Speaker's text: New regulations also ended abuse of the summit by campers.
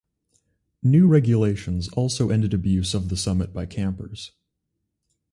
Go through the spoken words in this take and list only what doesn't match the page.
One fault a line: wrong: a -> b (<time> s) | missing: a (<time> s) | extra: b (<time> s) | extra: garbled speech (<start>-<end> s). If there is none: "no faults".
no faults